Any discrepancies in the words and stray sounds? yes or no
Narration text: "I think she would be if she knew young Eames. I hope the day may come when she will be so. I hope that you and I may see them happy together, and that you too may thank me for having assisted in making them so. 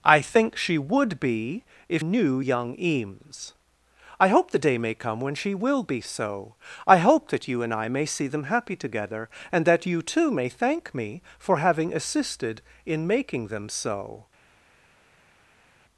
yes